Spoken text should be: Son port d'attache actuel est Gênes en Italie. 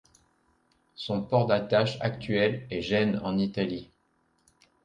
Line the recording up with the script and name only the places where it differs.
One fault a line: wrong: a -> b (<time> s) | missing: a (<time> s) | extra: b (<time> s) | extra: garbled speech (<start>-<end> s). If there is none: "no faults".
no faults